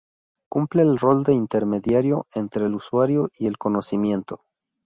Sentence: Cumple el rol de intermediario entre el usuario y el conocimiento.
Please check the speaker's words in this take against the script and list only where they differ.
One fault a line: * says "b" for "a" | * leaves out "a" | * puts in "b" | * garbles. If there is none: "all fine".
all fine